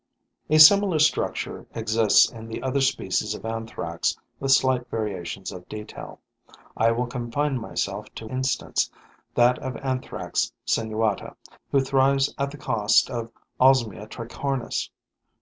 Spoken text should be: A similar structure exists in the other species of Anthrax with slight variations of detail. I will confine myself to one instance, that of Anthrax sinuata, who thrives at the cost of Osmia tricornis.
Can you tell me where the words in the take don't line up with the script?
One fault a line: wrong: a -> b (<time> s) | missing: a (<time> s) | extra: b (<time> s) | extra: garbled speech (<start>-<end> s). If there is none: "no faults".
missing: one (8.2 s)